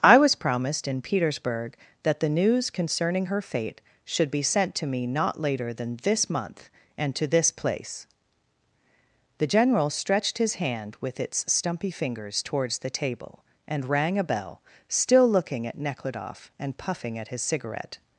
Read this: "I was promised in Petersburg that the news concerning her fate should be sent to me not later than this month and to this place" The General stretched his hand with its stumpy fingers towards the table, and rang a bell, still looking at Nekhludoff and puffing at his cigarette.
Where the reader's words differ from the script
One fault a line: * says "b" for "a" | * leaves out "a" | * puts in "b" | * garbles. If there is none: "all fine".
all fine